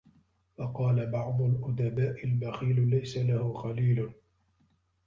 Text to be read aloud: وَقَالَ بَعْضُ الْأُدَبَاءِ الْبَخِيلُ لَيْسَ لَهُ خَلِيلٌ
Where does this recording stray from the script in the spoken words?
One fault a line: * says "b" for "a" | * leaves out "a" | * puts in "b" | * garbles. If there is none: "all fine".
all fine